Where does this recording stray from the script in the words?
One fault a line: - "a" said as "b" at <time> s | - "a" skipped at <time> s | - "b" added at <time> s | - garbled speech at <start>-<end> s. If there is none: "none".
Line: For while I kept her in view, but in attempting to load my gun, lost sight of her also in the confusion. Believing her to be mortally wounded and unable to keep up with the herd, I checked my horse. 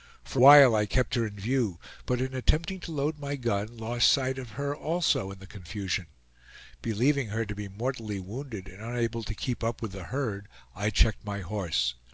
none